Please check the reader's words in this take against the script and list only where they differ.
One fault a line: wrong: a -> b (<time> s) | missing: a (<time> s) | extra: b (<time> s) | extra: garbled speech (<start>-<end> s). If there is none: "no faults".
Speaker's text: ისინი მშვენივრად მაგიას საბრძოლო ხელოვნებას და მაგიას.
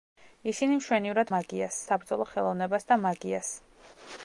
no faults